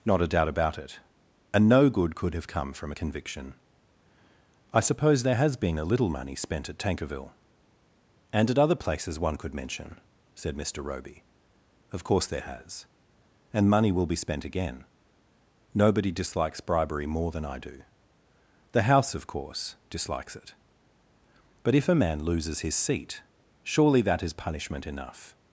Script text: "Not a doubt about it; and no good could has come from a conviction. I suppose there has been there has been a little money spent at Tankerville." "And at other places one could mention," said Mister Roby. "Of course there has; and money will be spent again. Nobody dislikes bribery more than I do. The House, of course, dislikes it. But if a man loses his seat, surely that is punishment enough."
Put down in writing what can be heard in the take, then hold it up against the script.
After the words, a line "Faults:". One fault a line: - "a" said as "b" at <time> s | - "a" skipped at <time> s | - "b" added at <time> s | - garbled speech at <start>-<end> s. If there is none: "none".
"Not a doubt about it; and no good could have come from a conviction. I suppose there has been a little money spent at Tankerville." "And at other places one could mention," said Mister Roby. "Of course there has; and money will be spent again. Nobody dislikes bribery more than I do. The House, of course, dislikes it. But if a man loses his seat, surely that is punishment enough."
Faults:
- "has" said as "have" at 2.3 s
- "there has been" skipped at 5.8 s